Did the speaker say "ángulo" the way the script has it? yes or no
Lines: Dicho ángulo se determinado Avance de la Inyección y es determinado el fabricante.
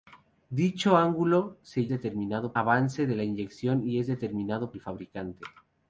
yes